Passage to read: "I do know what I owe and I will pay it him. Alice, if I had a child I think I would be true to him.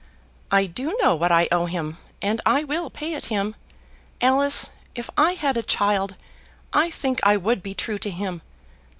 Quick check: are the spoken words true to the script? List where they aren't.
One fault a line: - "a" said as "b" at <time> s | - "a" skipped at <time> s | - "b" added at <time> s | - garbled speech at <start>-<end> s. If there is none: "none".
- "him" added at 1.7 s